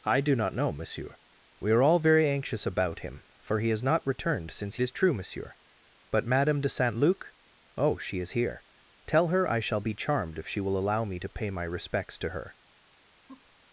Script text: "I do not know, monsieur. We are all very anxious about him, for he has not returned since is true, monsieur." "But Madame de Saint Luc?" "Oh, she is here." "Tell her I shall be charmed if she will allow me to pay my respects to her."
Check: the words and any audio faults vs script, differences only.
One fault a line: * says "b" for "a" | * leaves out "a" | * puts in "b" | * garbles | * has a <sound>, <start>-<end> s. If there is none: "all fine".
* has a laugh, 13.3-13.6 s